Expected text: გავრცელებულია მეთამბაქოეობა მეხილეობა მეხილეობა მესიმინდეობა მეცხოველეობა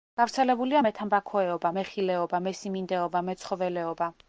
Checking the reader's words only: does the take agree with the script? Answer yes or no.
no